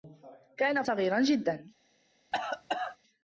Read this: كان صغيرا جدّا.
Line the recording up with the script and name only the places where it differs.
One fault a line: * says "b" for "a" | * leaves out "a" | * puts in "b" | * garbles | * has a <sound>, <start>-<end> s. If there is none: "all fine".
* has a cough, 2.3-3.0 s